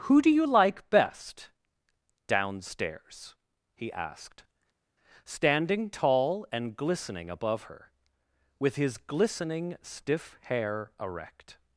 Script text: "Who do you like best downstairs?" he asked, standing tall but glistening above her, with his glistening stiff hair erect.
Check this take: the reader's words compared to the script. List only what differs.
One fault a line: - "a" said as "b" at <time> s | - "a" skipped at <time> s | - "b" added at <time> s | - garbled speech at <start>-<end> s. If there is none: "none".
- "but" said as "and" at 6.5 s